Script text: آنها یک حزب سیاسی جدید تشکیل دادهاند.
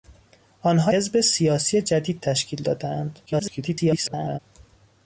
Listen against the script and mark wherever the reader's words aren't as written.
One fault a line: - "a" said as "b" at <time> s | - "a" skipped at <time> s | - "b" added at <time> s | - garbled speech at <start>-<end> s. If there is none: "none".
- "یک" skipped at 0.9 s
- garbled speech at 3.3-4.4 s